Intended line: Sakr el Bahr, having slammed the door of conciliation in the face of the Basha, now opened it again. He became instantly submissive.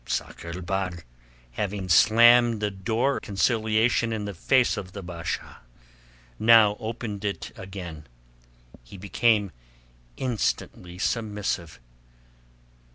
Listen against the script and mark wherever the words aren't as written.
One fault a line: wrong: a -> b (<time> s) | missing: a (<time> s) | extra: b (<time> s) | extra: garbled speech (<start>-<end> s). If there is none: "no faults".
missing: of (3.2 s)